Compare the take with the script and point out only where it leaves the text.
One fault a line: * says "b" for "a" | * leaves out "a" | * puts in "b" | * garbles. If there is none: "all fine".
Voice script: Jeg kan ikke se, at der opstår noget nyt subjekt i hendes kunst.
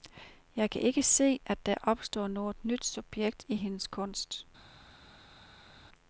all fine